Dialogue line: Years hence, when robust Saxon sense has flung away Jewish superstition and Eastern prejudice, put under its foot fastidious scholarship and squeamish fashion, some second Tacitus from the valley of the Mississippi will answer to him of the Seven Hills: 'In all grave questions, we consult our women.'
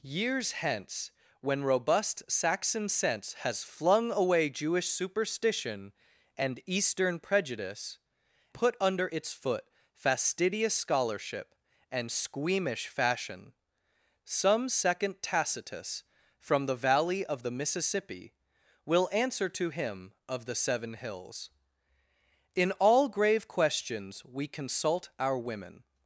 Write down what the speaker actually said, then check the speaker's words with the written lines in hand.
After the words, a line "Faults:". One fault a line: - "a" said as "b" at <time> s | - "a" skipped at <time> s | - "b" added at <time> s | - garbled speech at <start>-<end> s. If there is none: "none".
Years hence, when robust Saxon sense has flung away Jewish superstition and Eastern prejudice, put under its foot fastidious scholarship and squeamish fashion, some second Tacitus from the valley of the Mississippi will answer to him of the Seven Hills: 'In all grave questions, we consult our women.'
Faults:
none